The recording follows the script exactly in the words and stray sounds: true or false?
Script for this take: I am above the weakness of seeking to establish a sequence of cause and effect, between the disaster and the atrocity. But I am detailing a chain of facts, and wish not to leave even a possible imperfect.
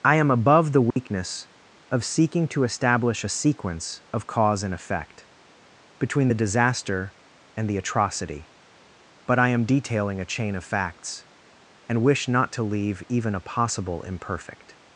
false